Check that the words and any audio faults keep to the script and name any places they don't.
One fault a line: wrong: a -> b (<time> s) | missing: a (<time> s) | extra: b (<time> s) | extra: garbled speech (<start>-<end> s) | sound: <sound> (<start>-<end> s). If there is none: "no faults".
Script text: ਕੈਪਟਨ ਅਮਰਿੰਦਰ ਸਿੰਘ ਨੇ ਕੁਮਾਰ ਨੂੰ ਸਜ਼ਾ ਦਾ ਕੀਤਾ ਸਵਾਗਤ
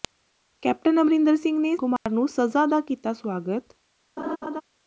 sound: dropout (2.0-2.1 s)
sound: laugh (4.2-4.6 s)